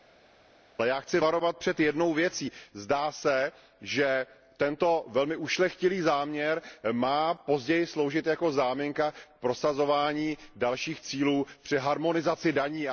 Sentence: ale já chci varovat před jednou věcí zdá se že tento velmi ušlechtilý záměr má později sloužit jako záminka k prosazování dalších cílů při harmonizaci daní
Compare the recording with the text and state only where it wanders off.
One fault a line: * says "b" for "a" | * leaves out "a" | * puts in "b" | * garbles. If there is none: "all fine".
all fine